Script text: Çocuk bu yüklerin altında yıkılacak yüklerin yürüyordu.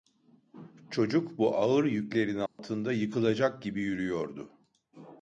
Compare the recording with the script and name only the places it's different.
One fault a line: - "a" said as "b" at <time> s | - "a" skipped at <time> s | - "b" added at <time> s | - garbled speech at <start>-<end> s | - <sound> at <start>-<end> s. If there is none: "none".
- "ağır" added at 1.6 s
- dropout at 2.5-2.6 s
- "yüklerin" said as "gibi" at 3.6 s